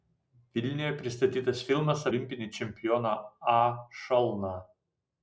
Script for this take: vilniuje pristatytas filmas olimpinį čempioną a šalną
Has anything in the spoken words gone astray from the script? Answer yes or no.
no